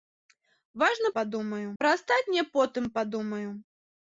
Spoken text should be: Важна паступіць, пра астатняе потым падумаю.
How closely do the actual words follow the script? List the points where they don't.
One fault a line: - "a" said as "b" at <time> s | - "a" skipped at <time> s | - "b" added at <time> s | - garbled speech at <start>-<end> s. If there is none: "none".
- "паступіць" said as "падумаю" at 1.2 s